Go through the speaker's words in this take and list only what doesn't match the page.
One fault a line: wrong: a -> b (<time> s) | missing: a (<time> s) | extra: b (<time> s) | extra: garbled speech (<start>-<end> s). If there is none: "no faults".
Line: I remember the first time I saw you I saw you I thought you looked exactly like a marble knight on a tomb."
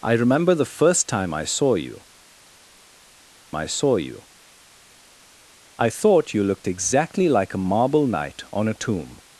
no faults